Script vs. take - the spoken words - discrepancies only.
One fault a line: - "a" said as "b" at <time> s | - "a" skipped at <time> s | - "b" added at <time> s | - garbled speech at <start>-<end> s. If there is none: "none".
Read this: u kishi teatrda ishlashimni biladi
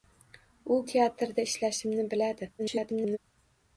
- "kishi" skipped at 0.8 s
- garbled speech at 2.6-3.2 s